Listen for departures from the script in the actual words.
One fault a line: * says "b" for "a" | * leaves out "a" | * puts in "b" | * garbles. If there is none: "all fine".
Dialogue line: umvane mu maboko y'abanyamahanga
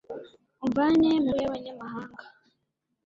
* leaves out "maboko"